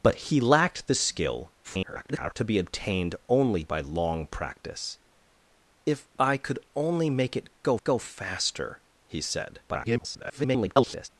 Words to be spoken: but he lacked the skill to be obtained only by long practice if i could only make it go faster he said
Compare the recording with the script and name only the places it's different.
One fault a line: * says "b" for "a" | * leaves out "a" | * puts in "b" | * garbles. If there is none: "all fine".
* garbles
* puts in "go"
* garbles